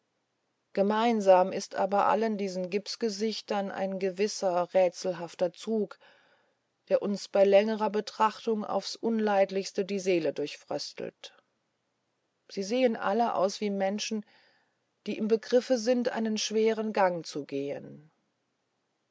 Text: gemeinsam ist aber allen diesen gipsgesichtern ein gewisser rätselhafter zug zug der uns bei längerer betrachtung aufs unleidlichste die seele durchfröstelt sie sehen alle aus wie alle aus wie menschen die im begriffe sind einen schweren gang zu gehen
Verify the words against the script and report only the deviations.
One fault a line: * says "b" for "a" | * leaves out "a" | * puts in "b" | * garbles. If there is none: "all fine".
* leaves out "zug"
* leaves out "alle aus wie"